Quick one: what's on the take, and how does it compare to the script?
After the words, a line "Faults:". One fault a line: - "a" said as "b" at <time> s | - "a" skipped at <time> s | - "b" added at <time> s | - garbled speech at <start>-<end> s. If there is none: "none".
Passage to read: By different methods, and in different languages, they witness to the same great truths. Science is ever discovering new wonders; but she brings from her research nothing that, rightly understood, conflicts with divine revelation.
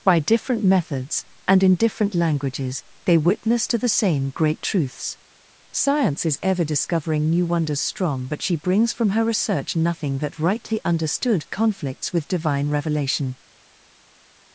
By different methods, and in different languages, they witness to the same great truths. Science is ever discovering new wonders; strong but she brings from her research nothing that, rightly understood, conflicts with divine revelation.
Faults:
- "strong" added at 7.8 s